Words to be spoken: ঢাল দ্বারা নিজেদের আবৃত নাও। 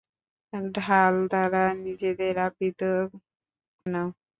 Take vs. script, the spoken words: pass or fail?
pass